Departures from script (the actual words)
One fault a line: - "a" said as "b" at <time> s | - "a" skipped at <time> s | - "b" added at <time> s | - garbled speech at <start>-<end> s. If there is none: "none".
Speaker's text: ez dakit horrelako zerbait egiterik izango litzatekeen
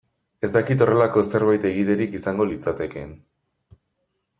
none